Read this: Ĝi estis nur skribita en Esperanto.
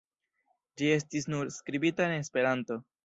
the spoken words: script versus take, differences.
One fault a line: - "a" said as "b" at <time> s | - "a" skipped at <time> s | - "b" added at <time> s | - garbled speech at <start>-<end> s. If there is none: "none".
none